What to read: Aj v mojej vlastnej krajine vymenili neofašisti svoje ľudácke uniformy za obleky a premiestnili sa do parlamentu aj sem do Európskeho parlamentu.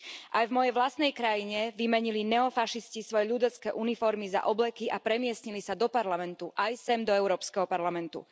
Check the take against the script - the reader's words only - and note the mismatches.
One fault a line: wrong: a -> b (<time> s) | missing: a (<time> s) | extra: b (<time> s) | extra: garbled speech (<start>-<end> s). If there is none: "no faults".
no faults